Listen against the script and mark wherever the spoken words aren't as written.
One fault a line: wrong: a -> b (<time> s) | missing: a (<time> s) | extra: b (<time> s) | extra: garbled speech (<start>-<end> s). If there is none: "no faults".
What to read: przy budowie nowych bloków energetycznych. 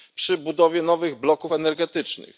no faults